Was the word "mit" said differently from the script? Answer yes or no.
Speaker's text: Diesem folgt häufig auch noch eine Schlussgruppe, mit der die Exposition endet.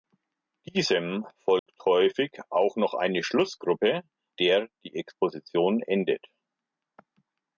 yes